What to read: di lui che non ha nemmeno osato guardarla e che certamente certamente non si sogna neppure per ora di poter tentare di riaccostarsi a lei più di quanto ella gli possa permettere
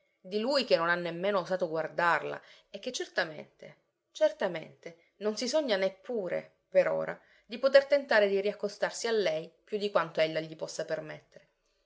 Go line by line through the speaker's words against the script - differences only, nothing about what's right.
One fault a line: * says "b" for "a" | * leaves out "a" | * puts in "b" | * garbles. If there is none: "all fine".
all fine